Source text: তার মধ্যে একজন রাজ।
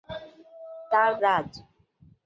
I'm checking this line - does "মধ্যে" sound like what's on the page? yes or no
no